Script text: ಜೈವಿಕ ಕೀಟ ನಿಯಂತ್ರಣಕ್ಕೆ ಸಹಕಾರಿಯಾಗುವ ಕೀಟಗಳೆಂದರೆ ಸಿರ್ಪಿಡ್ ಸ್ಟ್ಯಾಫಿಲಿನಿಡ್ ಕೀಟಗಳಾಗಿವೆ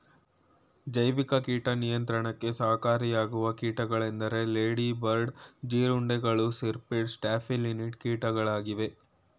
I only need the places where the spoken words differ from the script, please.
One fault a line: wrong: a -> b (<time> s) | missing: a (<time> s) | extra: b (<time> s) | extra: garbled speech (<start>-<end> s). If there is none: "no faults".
extra: ಲೇಡಿ ಬರ್ಡ್ ಜೀರುಂಡೆಗಳು (4.5 s)